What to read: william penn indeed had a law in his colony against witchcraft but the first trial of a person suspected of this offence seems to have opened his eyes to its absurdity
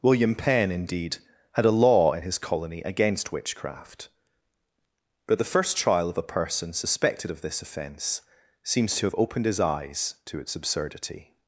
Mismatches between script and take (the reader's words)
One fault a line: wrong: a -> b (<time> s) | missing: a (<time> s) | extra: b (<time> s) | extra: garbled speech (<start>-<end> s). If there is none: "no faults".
no faults